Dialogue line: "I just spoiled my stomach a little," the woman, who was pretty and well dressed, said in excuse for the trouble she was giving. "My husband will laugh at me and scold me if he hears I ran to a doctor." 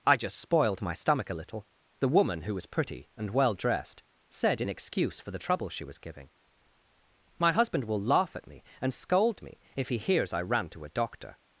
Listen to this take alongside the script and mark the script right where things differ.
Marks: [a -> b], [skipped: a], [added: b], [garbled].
"I just spoiled my stomach a little," the woman, who was pretty and well dressed, said in excuse for the trouble she was giving. "My husband will laugh at me and scold me if he hears I ran to a doctor."